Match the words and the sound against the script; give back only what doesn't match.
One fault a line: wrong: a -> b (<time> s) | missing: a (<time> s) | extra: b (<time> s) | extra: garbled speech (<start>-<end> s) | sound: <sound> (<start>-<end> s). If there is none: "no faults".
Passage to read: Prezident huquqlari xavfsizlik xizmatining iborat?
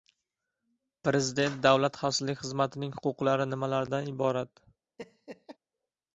wrong: huquqlari -> davlat (1.7 s)
extra: huquqlari nimalardan (3.0 s)
sound: laugh (5.0-5.6 s)